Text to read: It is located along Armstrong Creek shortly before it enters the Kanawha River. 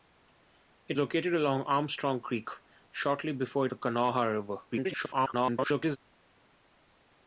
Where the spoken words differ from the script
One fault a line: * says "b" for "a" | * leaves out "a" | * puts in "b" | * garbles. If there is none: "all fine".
* leaves out "is"
* leaves out "enters"
* garbles